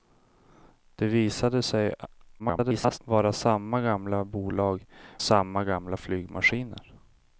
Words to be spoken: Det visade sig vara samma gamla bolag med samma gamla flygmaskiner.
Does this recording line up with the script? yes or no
no